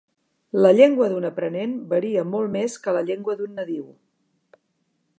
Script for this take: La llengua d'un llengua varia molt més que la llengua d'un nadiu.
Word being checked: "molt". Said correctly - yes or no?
yes